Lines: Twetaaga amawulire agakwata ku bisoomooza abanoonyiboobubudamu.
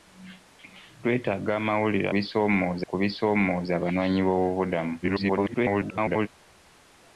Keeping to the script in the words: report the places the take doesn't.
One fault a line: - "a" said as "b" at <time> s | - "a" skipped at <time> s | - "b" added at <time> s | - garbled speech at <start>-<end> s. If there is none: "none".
- "agakwata" said as "bisoomooza" at 2.1 s
- garbled speech at 5.0-6.3 s